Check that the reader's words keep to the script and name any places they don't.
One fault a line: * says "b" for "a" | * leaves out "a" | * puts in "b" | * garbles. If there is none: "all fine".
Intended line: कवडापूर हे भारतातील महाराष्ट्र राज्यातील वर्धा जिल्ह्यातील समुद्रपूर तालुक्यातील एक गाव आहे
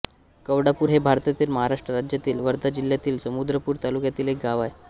all fine